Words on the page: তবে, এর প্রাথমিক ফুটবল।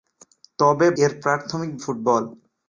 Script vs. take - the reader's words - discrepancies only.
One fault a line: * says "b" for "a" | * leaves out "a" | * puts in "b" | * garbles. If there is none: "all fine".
all fine